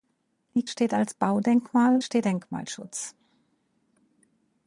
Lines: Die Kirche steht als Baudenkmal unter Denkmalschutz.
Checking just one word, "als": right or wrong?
right